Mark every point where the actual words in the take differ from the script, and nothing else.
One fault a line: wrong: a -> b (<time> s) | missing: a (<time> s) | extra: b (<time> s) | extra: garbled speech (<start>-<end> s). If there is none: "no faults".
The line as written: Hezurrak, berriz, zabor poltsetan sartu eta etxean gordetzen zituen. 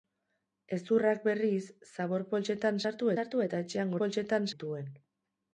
extra: sartu (3.2 s)
wrong: gordetzen -> poltsetan (4.0 s)